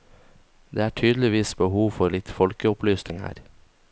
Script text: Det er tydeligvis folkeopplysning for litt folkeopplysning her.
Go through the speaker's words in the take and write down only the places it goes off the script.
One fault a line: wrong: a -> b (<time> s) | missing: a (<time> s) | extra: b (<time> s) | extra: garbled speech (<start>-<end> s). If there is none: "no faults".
wrong: folkeopplysning -> behov (1.6 s)